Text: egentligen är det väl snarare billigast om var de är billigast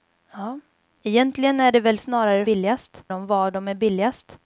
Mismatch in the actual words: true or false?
false